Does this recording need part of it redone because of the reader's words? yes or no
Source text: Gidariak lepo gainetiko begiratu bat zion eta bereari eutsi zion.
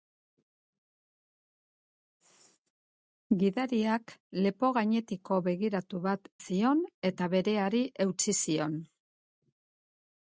no